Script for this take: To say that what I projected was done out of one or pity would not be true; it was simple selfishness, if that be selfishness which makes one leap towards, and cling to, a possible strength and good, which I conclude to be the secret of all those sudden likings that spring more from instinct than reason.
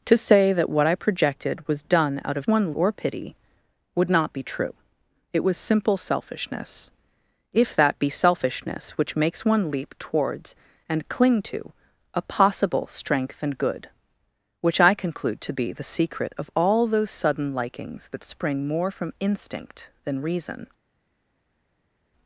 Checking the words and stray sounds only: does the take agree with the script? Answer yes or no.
yes